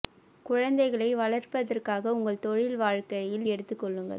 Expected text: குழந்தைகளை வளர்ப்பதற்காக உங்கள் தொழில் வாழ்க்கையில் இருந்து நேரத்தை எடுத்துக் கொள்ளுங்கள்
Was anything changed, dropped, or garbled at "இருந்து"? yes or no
yes